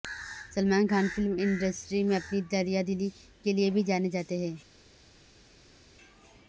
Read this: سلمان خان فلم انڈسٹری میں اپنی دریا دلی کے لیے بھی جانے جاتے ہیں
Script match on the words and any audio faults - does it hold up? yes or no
yes